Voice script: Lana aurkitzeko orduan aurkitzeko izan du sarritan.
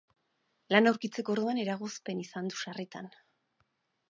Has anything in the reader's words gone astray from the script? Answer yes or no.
yes